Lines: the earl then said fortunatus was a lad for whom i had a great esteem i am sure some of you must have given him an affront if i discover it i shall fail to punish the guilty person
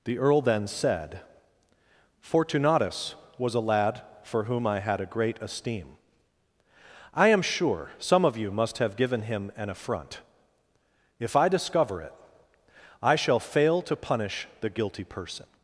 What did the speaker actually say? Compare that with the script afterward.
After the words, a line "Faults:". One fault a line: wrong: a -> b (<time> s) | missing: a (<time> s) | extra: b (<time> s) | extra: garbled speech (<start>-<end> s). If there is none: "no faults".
the earl then said fortunatus was a lad for whom i had a great esteem i am sure some of you must have given him an affront if i discover it i shall fail to punish the guilty person
Faults:
no faults